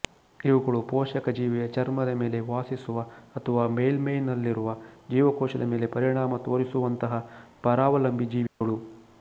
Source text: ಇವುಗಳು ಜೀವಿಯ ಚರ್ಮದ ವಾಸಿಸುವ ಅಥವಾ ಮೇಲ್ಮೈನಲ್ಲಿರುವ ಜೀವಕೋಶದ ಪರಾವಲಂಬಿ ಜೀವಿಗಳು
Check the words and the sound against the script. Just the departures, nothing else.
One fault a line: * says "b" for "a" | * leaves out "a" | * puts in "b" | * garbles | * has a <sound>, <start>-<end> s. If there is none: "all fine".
* puts in "ಪೋಷಕ"
* puts in "ಮೇಲೆ"
* puts in "ಮೇಲೆ ಪರಿಣಾಮ ತೋರಿಸುವಂತಹ"
* has a dropout, 8.5-8.6 s